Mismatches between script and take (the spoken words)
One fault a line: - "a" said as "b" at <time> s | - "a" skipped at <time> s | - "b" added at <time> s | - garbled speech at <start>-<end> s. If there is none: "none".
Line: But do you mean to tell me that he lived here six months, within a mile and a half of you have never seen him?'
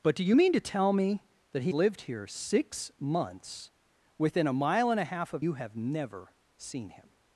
none